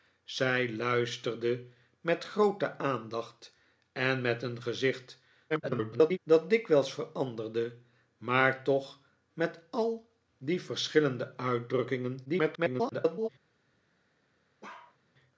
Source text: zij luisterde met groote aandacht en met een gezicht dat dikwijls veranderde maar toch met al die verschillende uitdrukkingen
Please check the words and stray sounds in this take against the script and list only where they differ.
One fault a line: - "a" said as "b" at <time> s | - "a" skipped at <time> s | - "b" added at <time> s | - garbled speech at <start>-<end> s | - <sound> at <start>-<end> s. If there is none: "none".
- garbled speech at 5.5-6.2 s
- garbled speech at 12.2-13.3 s
- bark at 14.6-15.0 s